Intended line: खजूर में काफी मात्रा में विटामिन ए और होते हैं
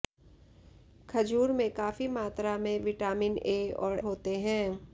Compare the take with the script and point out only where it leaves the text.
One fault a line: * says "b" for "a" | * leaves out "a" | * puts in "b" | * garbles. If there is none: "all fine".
all fine